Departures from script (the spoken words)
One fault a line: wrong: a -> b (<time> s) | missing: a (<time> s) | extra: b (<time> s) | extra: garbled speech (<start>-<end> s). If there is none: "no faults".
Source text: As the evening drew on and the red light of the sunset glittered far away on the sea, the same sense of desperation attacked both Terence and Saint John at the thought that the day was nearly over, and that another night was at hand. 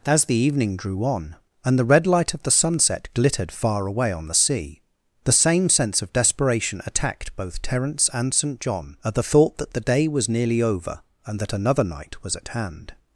no faults